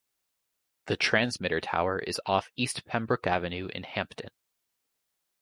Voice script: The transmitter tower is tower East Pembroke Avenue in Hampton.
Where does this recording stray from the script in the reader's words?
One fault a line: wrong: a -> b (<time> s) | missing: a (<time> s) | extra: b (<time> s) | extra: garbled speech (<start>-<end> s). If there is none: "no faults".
wrong: tower -> off (2.2 s)